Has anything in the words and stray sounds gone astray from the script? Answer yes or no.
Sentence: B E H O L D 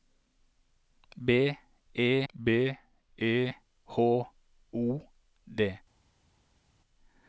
yes